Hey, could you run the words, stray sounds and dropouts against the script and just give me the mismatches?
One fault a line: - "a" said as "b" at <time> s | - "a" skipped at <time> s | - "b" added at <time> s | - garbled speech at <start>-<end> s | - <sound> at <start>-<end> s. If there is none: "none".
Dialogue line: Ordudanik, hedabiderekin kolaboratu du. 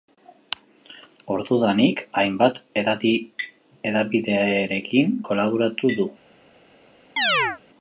- "hainbat" added at 2.2 s
- chirp at 7.2-7.6 s